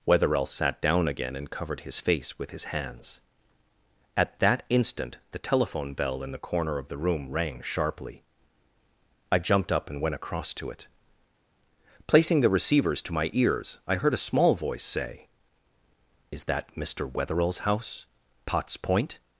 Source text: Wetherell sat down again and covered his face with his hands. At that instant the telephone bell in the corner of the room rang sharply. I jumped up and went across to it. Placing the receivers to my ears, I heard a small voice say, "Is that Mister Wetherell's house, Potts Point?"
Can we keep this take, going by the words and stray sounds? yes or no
yes